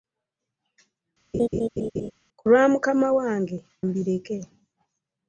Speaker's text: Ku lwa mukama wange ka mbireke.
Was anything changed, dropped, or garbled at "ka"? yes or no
yes